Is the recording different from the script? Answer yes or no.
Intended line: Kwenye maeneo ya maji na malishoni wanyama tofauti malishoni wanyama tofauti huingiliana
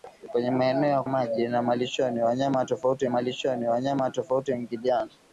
no